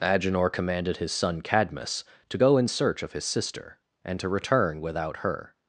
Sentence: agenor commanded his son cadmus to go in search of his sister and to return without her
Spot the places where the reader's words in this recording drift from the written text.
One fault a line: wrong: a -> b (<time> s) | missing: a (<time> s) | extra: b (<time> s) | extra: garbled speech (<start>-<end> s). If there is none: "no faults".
no faults